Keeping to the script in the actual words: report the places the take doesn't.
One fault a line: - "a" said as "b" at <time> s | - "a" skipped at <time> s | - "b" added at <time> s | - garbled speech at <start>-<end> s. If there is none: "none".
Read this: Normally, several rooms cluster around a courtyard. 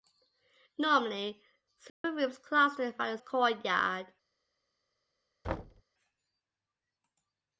none